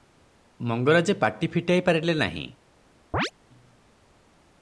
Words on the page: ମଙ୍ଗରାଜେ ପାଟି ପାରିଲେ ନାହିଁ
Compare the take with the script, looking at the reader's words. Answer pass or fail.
fail